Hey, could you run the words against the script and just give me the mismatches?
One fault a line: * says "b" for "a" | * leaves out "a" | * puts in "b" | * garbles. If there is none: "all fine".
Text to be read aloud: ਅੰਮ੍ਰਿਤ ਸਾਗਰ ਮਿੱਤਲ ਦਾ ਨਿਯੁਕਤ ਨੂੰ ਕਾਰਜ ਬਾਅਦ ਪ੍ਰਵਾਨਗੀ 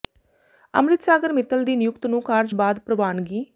* says "ਦੀ" for "ਦਾ"